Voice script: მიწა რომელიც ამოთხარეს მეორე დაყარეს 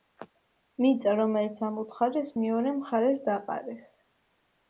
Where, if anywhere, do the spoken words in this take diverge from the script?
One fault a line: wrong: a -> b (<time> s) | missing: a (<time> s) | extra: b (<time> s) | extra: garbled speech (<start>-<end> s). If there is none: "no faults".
extra: მხარეს (2.8 s)